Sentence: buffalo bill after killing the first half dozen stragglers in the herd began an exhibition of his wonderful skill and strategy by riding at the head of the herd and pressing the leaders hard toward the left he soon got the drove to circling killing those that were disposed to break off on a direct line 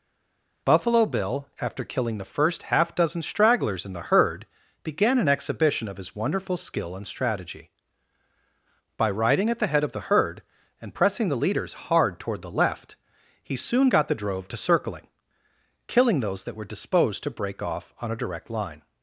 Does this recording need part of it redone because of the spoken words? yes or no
no